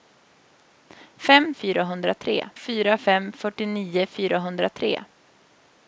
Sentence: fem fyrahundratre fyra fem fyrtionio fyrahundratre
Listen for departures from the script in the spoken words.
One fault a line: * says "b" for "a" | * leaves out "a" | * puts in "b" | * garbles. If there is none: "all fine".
all fine